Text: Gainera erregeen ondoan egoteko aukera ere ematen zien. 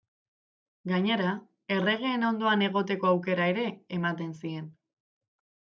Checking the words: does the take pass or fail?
pass